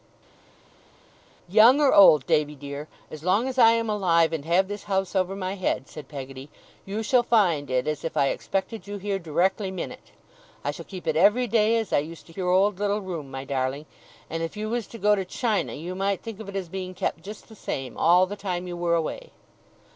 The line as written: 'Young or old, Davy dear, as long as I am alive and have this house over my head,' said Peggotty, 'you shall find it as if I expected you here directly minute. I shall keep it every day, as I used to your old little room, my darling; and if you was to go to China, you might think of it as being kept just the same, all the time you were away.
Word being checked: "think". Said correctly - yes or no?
yes